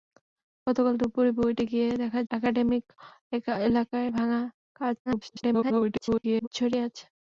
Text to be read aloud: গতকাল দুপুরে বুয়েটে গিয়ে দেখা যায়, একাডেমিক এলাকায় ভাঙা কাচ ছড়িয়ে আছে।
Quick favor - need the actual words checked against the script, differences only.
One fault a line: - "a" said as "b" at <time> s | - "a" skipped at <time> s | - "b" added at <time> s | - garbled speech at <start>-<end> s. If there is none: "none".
- "যায়" skipped at 2.2 s
- garbled speech at 5.1-6.5 s